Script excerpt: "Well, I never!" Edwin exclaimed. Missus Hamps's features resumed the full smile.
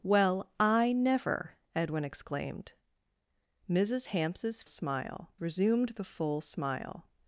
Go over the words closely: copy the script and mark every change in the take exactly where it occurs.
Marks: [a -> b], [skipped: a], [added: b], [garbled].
"Well, I never!" Edwin exclaimed. Missus Hamps's [features -> smile] resumed the full smile.